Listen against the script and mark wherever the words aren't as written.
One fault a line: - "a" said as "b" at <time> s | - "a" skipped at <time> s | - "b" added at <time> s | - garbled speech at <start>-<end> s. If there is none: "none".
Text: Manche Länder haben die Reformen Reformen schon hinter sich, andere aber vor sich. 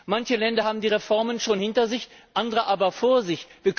- "Reformen" skipped at 1.4 s